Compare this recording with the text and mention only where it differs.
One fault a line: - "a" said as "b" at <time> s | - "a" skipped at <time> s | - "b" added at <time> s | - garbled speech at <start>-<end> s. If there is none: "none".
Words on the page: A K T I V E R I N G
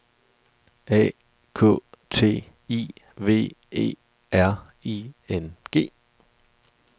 none